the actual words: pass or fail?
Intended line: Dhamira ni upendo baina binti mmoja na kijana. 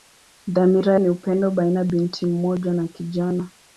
pass